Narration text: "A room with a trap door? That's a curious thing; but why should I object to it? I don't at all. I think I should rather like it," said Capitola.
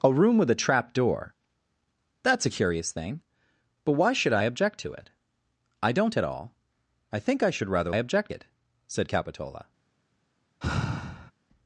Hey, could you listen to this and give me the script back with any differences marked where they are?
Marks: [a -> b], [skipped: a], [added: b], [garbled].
"A room with a trap door? That's a curious thing; but why should I object to it? I don't at all. I think I should rather [like -> object] it," said Capitola.